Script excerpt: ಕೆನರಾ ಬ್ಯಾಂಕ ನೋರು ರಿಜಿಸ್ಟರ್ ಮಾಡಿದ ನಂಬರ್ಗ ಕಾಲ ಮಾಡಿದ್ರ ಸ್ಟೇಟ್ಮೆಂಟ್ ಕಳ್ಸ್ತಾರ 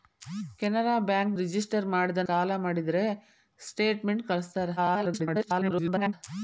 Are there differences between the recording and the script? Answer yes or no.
yes